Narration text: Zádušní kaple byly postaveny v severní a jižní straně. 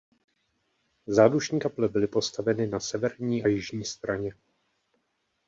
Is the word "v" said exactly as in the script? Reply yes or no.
no